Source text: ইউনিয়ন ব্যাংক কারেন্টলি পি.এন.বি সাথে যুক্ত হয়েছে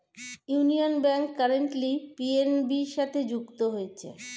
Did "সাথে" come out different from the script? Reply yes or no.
no